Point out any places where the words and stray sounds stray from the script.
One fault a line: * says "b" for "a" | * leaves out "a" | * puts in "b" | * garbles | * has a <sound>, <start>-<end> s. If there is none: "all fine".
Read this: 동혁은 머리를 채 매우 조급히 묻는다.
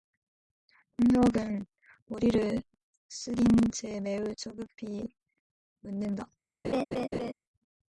* puts in "숙인"
* has a laugh, 6.6-7.3 s